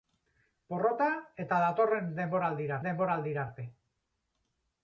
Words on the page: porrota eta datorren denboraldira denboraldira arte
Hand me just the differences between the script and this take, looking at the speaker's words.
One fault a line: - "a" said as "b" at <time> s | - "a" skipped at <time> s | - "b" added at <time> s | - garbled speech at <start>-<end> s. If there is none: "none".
none